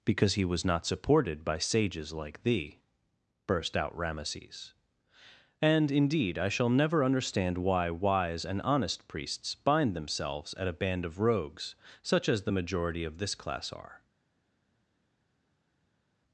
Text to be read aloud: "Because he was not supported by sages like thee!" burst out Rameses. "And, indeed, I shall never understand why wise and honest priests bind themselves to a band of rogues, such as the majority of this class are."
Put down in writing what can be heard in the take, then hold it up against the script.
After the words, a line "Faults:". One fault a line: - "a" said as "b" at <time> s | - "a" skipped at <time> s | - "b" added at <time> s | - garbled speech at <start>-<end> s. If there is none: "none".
"Because he was not supported by sages like thee!" burst out Rameses. "And, indeed, I shall never understand why wise and honest priests bind themselves at a band of rogues, such as the majority of this class are."
Faults:
- "to" said as "at" at 10.6 s